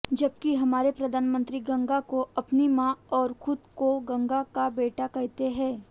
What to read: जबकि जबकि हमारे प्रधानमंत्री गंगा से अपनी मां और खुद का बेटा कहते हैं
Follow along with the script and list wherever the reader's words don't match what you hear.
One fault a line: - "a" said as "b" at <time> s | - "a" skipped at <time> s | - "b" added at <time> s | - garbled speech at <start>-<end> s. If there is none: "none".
- "जबकि" skipped at 0.5 s
- "से" said as "को" at 2.1 s
- "को गंगा" added at 3.8 s